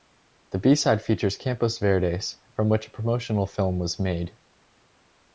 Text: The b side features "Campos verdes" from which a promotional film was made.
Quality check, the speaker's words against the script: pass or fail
pass